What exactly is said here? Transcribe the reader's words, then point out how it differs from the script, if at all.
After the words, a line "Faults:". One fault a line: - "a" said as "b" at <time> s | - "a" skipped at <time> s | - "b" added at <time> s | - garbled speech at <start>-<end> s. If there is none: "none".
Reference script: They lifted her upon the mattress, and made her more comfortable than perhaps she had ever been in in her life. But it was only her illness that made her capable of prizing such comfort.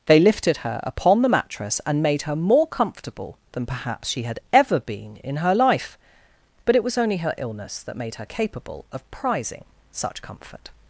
They lifted her upon the mattress, and made her more comfortable than perhaps she had ever been in her life. But it was only her illness that made her capable of prizing such comfort.
Faults:
- "in" skipped at 5.4 s